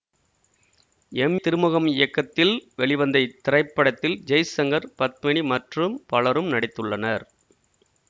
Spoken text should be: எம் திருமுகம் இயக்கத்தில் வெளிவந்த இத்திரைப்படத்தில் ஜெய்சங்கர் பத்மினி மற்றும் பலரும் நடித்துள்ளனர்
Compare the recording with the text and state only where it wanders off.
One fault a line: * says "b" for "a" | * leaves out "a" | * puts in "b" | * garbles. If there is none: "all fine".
all fine